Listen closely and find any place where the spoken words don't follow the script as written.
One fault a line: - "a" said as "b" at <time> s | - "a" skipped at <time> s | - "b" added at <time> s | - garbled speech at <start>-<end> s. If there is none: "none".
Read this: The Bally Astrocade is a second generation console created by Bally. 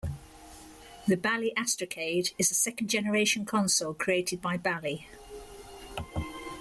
none